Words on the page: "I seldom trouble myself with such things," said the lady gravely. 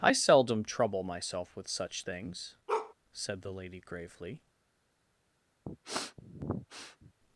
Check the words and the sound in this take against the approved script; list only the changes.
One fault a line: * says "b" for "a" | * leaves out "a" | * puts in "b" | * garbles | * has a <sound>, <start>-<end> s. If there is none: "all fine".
* has a bark, 2.7-2.9 s
* has a sniff, 5.7-7.1 s